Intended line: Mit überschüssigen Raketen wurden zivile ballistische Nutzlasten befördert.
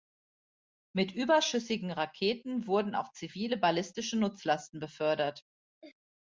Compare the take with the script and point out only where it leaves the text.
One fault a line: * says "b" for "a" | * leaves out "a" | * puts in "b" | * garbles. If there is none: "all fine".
* puts in "auch"